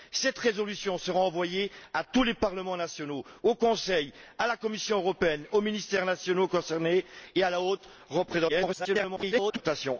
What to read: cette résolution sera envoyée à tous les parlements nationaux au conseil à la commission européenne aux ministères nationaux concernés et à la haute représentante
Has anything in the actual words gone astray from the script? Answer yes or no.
yes